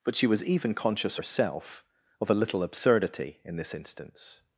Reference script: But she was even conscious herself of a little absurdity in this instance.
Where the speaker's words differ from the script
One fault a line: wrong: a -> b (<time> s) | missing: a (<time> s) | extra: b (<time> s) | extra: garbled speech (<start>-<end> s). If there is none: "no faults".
no faults